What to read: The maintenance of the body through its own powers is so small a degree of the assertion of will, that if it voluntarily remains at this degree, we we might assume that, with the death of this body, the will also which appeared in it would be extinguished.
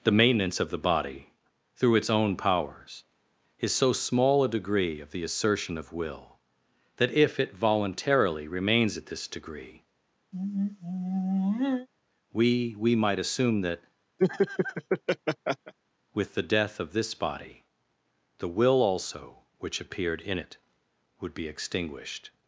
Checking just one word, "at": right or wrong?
right